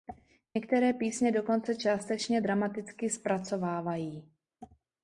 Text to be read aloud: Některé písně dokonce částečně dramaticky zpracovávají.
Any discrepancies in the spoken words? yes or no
no